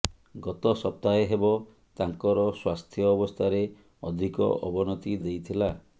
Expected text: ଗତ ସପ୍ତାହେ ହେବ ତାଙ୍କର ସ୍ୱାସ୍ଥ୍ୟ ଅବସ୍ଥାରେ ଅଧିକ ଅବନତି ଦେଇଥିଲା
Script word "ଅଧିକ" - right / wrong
right